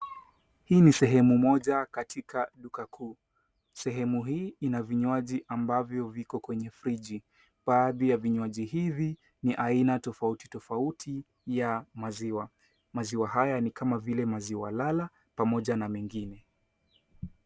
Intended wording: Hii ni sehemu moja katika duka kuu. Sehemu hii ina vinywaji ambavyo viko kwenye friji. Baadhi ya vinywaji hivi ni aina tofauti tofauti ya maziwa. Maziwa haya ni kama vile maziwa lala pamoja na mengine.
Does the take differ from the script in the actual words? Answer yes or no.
no